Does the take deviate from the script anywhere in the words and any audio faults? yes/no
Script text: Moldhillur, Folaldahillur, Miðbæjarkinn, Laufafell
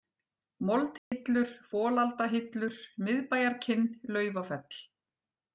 yes